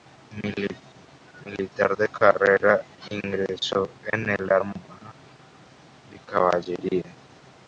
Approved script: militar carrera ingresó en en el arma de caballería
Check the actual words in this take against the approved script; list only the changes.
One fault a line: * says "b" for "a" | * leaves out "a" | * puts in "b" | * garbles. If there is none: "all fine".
* puts in "de"
* leaves out "en"